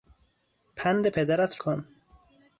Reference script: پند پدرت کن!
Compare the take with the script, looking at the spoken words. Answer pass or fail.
pass